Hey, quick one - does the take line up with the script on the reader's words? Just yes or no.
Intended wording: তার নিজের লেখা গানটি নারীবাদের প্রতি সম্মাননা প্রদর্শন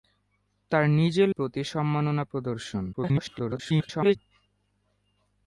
no